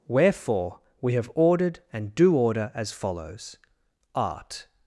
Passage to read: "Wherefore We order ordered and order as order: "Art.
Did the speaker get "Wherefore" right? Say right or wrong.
right